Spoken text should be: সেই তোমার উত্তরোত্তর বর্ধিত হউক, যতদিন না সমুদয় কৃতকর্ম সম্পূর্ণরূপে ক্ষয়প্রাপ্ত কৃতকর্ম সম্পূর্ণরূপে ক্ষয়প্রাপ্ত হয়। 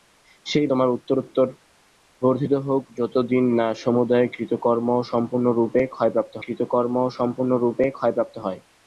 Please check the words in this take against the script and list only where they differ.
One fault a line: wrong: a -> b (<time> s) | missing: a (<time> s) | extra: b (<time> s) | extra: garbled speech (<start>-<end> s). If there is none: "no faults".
no faults